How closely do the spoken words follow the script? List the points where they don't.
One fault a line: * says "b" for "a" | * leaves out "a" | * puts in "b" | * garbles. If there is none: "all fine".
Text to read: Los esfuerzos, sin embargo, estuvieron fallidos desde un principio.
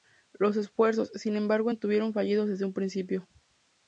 all fine